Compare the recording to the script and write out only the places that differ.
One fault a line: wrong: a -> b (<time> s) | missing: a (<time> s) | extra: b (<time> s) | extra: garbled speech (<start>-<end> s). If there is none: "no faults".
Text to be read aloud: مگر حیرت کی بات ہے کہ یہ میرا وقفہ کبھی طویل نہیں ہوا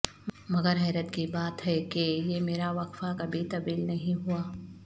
no faults